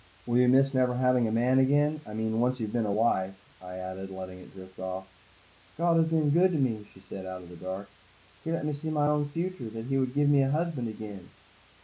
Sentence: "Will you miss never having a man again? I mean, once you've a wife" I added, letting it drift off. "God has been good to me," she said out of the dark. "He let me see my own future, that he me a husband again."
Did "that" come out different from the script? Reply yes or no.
no